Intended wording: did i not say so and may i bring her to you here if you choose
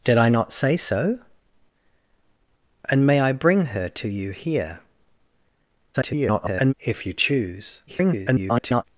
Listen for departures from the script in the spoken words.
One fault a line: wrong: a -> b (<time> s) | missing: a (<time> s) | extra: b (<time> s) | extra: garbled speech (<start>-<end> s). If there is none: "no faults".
extra: garbled speech (5.9-6.7 s)
extra: garbled speech (7.9-8.8 s)